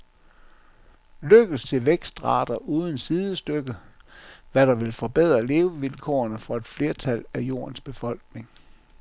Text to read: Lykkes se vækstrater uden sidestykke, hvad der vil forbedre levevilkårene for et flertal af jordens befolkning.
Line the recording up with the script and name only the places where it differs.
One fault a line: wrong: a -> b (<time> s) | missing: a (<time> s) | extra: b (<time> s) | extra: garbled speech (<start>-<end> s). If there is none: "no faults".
no faults